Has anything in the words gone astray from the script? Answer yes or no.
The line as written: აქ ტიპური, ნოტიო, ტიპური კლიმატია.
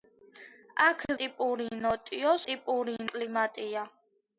no